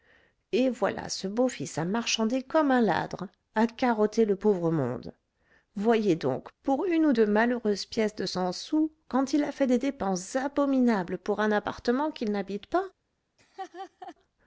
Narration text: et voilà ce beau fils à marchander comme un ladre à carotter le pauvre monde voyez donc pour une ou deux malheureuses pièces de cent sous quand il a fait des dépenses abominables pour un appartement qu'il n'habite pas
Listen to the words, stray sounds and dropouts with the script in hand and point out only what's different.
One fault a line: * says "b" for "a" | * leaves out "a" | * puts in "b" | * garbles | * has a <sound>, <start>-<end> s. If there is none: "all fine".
* has a laugh, 13.4-14.2 s